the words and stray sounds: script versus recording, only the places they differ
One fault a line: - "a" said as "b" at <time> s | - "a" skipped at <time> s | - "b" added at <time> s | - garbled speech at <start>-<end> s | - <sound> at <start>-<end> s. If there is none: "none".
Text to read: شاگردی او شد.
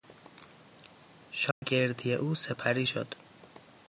- dropout at 1.5-1.6 s
- "سپری" added at 2.3 s